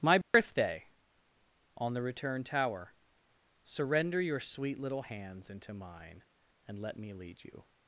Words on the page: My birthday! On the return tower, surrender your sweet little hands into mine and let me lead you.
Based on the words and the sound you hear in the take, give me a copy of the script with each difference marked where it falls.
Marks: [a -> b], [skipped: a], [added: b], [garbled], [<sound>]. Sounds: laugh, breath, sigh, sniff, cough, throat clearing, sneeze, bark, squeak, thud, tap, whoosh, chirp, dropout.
My birthday! [dropout] On the return tower, surrender your sweet little hands into mine and let me lead you.